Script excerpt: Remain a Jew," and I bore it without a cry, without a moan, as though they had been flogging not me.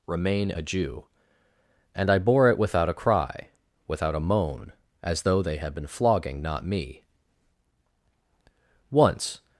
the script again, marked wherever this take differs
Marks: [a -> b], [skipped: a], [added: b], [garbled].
Remain a Jew," and I bore it without a cry, without a moan, as though they had been flogging not me. [added: Once]